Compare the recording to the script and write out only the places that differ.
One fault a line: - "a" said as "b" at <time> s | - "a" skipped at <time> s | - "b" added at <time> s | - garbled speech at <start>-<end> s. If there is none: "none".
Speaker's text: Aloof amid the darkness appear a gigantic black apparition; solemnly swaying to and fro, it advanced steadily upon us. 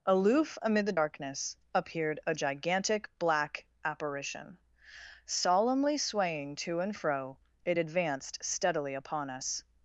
- "appear" said as "appeared" at 1.7 s